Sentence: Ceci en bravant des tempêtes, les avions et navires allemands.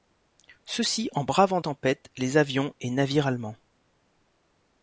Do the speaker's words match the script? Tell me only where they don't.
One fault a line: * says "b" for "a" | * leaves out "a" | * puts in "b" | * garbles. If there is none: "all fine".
* leaves out "des"